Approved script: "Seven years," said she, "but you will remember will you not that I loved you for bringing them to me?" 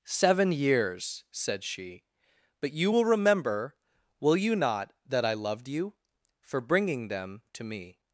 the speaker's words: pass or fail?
pass